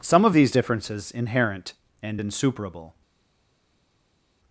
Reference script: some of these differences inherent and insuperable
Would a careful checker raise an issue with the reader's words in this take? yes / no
no